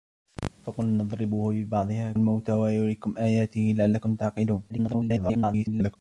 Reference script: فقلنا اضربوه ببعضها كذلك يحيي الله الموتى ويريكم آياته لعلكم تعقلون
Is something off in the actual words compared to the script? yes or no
yes